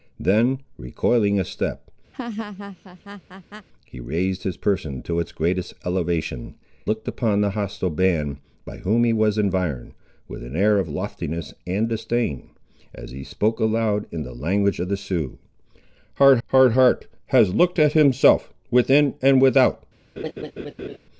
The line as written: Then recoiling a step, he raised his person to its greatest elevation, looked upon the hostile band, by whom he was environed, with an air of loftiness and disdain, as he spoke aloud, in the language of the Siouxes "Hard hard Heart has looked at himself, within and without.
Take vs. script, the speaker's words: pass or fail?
pass